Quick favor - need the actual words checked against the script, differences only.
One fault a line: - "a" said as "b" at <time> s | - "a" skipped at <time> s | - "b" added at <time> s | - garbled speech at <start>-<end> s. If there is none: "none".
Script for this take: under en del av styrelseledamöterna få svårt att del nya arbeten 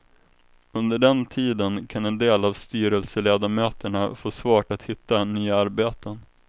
- "den tiden kan" added at 1.0 s
- "del" said as "hitta" at 4.8 s